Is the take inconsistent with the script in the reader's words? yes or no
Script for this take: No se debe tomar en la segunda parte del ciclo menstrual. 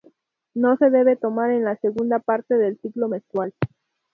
no